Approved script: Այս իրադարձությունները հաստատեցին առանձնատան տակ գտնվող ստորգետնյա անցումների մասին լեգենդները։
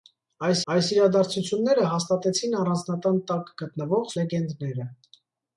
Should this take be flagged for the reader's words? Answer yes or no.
yes